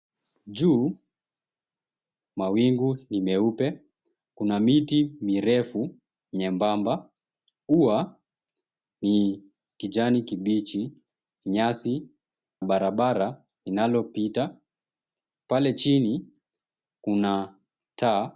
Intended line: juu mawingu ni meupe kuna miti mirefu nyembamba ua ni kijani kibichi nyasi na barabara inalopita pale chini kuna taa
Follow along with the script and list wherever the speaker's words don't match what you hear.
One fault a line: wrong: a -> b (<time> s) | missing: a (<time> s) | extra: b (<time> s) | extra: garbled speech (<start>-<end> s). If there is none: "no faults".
missing: na (12.1 s)